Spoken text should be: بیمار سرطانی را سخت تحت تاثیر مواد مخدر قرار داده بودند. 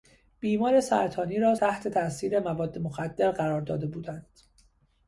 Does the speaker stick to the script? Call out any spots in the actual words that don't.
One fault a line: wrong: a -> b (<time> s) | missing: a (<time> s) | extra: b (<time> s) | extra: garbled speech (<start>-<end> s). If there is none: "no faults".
missing: سخت (1.6 s)